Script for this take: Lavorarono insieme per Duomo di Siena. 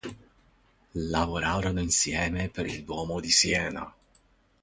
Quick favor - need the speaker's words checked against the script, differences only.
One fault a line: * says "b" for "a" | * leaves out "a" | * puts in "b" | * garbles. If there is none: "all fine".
* puts in "il"